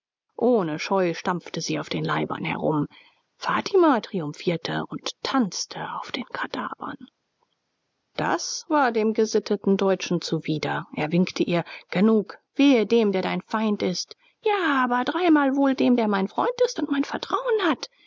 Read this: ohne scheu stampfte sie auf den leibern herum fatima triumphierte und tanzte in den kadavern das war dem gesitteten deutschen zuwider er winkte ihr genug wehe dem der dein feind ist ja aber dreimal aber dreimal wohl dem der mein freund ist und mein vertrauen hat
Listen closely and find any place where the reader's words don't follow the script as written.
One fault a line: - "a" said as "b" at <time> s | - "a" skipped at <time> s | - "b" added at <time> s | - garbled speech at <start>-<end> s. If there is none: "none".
- "in" said as "auf" at 6.0 s
- "aber dreimal" skipped at 15.6 s